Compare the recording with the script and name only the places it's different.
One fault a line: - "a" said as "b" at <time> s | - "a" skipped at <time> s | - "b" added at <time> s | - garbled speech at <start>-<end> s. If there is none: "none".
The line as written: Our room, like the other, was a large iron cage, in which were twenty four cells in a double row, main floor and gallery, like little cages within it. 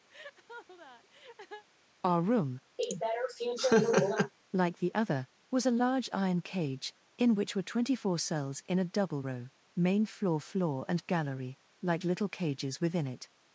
- "floor" added at 10.4 s